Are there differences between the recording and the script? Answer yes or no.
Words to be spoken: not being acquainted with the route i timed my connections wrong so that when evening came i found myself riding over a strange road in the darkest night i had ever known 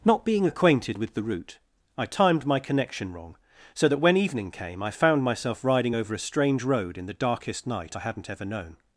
yes